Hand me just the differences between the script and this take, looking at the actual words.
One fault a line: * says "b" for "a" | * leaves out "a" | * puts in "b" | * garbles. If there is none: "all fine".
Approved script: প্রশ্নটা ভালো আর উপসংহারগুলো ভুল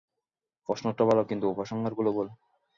* says "কিন্তু" for "আর"